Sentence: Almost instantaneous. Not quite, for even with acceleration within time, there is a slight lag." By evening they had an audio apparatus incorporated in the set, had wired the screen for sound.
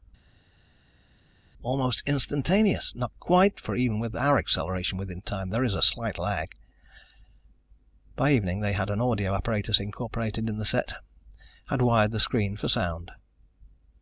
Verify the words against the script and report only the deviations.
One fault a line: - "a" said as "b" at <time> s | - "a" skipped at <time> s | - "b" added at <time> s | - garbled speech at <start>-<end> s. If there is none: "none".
- "our" added at 4.1 s